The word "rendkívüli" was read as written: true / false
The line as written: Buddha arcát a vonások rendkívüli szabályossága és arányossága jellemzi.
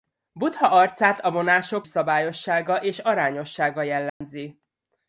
false